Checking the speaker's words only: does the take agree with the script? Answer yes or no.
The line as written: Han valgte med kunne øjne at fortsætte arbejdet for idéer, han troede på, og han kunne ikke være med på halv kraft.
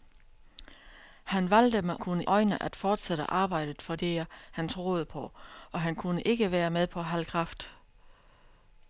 yes